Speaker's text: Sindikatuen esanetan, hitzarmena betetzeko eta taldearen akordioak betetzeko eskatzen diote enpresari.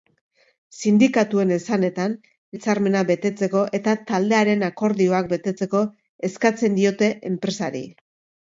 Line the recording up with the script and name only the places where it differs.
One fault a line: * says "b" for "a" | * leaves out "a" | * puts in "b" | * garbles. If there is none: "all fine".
all fine